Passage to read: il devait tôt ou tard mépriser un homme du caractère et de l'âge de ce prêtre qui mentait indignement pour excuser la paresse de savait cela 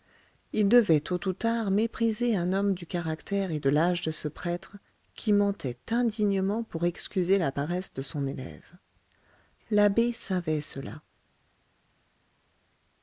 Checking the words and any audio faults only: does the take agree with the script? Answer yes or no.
no